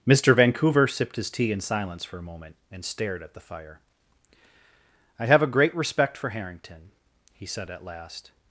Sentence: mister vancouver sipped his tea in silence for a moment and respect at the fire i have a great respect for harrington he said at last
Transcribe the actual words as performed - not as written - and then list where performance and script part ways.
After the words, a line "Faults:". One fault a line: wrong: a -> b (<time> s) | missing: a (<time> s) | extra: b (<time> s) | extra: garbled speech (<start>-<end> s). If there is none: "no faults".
mister vancouver sipped his tea in silence for a moment and stared at the fire i have a great respect for harrington he said at last
Faults:
wrong: respect -> stared (2.8 s)